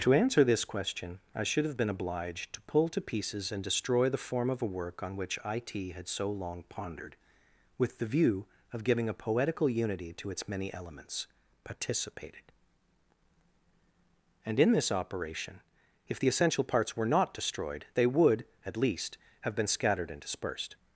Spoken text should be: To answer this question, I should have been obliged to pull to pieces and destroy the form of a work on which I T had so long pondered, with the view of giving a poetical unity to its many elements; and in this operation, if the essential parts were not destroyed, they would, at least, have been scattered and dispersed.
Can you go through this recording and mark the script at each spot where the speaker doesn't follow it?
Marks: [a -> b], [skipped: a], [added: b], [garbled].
To answer this question, I should have been obliged to pull to pieces and destroy the form of a work on which I T had so long pondered, with the view of giving a poetical unity to its many elements; [added: participated] and in this operation, if the essential parts were not destroyed, they would, at least, have been scattered and dispersed.